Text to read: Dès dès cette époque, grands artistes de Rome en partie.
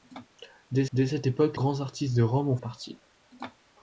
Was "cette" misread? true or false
false